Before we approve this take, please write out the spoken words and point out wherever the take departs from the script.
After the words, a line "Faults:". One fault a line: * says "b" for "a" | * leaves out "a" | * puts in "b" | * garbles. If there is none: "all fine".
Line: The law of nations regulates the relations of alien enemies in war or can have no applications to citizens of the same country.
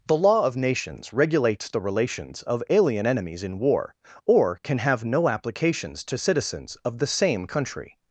The law of nations regulates the relations of alien enemies in war or can have no applications to citizens of the same country.
Faults:
all fine